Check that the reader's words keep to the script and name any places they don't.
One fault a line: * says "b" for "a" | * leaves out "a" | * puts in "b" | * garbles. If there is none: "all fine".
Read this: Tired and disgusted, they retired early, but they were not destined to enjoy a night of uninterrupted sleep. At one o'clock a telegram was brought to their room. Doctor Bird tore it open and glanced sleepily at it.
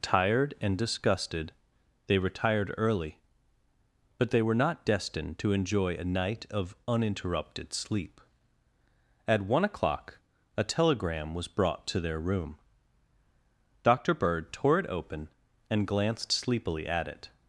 all fine